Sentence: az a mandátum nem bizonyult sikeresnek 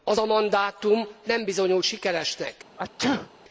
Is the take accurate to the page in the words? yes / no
yes